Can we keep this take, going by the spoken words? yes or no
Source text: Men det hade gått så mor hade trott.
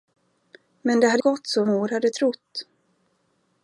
yes